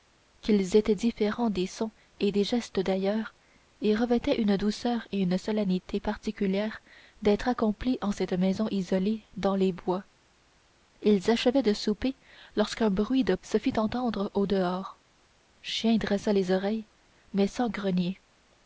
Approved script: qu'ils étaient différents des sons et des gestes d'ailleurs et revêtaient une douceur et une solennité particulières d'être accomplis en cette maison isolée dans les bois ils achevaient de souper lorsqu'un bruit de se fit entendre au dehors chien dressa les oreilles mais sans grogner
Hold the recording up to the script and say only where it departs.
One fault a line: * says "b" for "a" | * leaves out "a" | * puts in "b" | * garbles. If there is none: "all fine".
all fine